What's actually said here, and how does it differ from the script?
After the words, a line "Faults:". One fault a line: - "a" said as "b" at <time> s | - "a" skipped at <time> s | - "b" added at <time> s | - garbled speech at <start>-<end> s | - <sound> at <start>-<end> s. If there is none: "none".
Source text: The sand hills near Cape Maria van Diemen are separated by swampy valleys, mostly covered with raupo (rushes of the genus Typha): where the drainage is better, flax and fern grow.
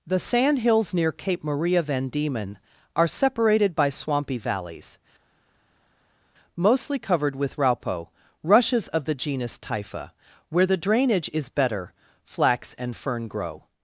The sand hills near Cape Maria van Diemen are separated by swampy valleys, mostly covered with raupo (rushes of the genus Typha): where the drainage is better, flax and fern grow.
Faults:
none